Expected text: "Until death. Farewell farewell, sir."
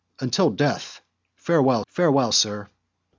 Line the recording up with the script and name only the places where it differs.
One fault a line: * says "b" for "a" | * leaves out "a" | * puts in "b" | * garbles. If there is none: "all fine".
all fine